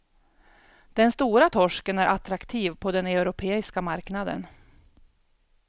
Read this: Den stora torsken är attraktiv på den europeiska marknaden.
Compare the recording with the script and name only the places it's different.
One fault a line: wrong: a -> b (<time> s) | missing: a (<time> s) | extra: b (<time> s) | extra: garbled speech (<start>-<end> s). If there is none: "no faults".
no faults